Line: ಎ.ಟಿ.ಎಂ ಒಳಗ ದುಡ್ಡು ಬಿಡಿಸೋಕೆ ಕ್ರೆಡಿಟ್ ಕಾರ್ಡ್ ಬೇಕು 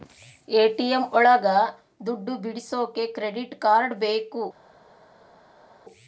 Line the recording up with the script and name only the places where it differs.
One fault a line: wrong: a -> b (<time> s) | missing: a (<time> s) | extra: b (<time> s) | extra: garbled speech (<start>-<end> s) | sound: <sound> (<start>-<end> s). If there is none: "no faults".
no faults